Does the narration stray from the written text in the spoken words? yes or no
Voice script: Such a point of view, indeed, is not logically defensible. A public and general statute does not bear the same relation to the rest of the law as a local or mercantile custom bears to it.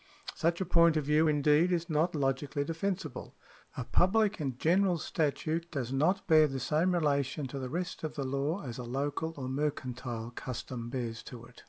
no